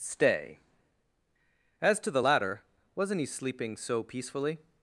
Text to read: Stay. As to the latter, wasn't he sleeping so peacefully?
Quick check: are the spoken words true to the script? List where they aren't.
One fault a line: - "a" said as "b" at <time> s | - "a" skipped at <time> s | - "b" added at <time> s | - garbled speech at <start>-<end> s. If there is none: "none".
none